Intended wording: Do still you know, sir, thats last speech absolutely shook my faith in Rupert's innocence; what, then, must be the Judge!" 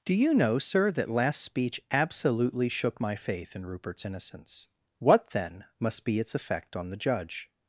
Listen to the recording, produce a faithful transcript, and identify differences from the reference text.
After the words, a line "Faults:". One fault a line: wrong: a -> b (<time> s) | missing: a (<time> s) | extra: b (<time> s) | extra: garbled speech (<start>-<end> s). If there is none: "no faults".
Do you know, sir, that last speech absolutely shook my faith in Rupert's innocence; what, then, must be its effect on the Judge!"
Faults:
missing: still (0.1 s)
wrong: thats -> that (0.9 s)
extra: its effect on (6.2 s)